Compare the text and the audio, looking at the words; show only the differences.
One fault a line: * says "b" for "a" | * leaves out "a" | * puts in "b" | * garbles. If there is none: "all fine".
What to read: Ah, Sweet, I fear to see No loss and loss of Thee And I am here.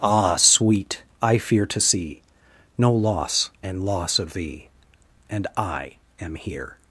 all fine